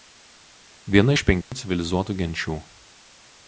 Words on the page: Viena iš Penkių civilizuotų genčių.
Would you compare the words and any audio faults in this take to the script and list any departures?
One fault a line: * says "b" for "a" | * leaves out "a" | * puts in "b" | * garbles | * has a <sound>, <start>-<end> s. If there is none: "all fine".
* has a dropout, 1.4-1.5 s